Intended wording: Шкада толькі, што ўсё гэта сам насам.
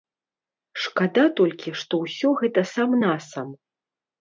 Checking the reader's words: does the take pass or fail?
pass